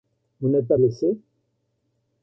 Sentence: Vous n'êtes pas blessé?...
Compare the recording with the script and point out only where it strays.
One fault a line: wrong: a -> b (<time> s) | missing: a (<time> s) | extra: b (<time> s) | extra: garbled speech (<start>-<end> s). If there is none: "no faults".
no faults